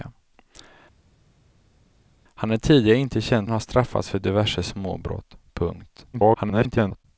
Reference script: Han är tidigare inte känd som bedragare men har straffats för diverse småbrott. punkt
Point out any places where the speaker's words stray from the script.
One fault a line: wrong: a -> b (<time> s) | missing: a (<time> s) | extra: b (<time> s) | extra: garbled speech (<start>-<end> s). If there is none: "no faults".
missing: som bedragare men (3.5 s)
extra: garbled speech (6.1-7.0 s)